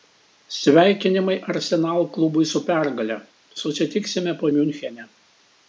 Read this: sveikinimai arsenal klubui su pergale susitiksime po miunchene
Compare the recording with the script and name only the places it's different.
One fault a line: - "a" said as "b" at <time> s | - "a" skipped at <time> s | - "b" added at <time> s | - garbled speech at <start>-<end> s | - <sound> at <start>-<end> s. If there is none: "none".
none